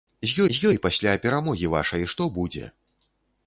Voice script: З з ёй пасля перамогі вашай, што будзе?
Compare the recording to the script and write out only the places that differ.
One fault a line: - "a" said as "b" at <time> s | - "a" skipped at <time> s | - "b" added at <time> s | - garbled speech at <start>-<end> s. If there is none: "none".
none